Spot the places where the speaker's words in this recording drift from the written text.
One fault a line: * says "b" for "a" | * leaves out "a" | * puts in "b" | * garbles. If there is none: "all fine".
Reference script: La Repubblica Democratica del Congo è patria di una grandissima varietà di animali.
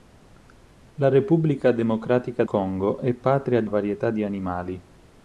* leaves out "del"
* leaves out "una grandissima"